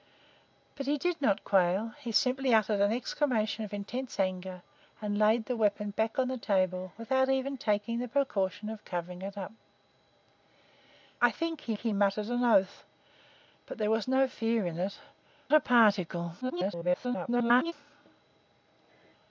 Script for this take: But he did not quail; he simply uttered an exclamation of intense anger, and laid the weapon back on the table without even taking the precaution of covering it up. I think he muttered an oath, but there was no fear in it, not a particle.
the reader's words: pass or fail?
fail